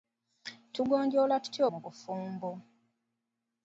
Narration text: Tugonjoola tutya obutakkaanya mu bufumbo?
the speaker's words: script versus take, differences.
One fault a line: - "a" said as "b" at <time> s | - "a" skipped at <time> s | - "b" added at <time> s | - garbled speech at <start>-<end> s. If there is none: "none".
- "obutakkaanya" skipped at 1.6 s